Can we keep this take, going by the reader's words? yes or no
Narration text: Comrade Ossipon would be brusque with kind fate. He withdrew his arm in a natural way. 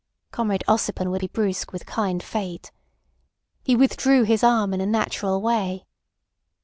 yes